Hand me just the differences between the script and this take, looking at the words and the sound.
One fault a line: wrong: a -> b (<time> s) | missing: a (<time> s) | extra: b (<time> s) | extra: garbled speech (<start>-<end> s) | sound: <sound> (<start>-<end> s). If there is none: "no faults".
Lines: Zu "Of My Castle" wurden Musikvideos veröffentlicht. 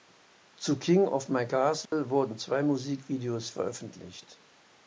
extra: King (0.8 s)
sound: dropout (1.9-1.9 s)
extra: zwei (2.4 s)